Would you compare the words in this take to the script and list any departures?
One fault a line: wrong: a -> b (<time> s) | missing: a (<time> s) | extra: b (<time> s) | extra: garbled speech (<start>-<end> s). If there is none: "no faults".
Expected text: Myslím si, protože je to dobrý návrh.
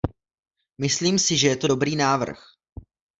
wrong: protože -> že (1.4 s)